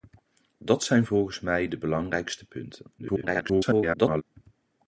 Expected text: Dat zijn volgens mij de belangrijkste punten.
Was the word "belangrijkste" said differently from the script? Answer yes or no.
no